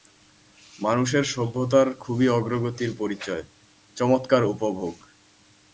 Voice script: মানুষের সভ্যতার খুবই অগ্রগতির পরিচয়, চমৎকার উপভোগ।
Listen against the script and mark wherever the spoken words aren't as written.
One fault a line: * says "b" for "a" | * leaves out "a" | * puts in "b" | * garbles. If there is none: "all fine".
all fine